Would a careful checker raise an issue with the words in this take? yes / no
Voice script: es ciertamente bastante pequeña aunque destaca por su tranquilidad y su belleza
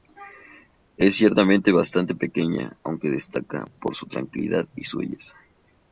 no